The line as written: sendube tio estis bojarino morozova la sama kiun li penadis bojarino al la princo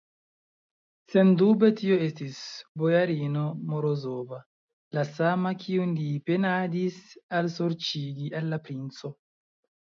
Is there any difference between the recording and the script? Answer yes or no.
yes